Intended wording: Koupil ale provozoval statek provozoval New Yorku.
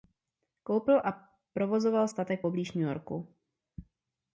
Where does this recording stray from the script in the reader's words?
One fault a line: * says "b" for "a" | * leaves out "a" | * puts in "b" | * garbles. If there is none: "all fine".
* says "a" for "ale"
* says "poblíž" for "provozoval"